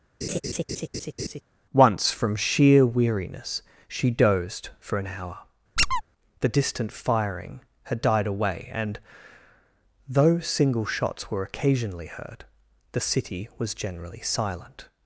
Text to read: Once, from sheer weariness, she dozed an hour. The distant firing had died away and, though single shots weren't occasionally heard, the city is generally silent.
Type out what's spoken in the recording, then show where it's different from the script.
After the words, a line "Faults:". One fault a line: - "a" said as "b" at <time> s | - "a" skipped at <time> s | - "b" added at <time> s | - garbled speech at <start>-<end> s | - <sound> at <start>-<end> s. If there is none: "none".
Once, from sheer weariness, she dozed for an hour. The distant firing had died away and, though single shots were occasionally heard, the city was generally silent.
Faults:
- laugh at 0.2-1.4 s
- "for" added at 4.8 s
- squeak at 5.8-6.0 s
- "weren't" said as "were" at 11.3 s
- "is" said as "was" at 13.6 s